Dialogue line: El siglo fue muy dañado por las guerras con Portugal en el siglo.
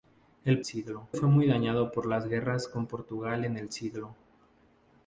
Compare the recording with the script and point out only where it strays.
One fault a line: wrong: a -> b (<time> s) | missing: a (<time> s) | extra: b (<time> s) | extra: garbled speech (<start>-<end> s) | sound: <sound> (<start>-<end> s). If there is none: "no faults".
no faults